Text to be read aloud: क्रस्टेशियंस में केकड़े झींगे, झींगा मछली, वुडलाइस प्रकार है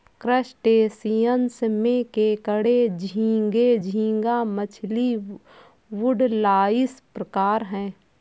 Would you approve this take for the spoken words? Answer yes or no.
yes